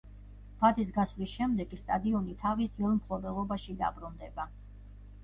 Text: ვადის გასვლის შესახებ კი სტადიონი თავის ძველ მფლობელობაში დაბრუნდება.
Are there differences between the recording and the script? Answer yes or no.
yes